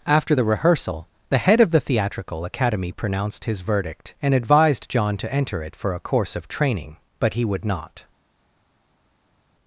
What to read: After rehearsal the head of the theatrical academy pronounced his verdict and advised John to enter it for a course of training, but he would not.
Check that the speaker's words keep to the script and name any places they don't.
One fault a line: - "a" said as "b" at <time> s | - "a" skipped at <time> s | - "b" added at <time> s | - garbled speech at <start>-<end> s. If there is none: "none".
- "the" added at 0.3 s